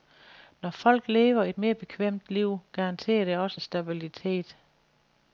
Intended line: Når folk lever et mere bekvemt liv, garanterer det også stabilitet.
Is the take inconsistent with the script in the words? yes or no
no